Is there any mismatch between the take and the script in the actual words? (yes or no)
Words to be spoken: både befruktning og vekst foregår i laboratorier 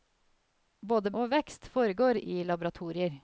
yes